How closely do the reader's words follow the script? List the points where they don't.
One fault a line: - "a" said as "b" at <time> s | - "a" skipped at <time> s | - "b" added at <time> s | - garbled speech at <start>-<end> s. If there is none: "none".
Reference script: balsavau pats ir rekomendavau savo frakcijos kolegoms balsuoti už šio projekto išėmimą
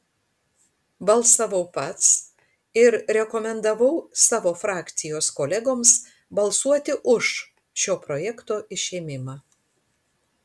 none